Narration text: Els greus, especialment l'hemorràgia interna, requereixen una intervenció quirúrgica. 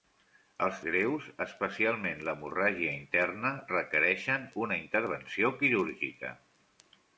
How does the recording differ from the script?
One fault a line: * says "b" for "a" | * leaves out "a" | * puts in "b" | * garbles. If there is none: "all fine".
all fine